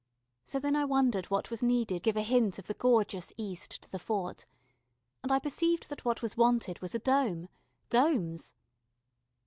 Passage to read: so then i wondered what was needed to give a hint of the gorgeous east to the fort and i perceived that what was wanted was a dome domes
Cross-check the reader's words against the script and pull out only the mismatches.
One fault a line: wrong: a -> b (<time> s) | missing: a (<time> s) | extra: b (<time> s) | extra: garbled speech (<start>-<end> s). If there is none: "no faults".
missing: to (2.0 s)